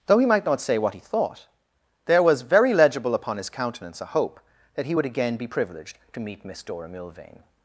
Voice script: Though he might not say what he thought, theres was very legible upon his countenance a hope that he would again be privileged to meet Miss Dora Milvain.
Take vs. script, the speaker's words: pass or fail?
fail